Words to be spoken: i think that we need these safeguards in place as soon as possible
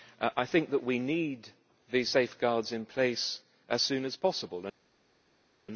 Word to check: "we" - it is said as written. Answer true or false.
true